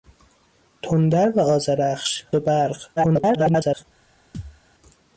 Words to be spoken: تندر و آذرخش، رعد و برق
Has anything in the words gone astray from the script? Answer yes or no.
yes